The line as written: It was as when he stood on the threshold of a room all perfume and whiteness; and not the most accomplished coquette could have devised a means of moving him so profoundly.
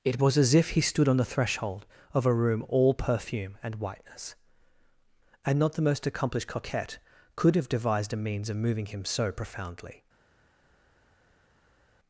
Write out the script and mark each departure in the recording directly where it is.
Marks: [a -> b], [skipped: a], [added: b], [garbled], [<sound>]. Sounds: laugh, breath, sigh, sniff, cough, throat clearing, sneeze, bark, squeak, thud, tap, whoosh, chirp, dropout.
It was as [when -> if] he stood on the threshold of a room all perfume and whiteness; and not the most accomplished coquette could have devised a means of moving him so profoundly.